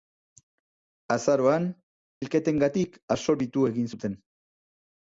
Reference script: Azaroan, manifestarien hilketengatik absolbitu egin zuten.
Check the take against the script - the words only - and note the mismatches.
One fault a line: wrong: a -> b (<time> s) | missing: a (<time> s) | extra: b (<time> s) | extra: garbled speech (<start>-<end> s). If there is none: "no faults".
missing: manifestarien (1.7 s)